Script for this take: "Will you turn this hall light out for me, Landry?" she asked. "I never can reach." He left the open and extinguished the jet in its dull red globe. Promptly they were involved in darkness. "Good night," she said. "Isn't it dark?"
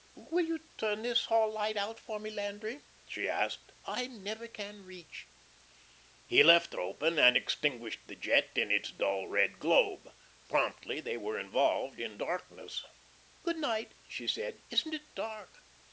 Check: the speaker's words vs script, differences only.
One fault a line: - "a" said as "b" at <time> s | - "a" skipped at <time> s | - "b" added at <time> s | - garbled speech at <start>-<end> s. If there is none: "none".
none